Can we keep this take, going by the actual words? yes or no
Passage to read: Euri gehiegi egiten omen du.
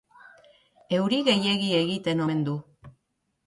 yes